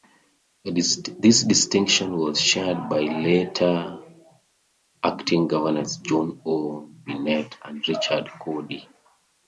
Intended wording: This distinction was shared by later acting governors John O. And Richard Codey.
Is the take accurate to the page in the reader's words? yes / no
no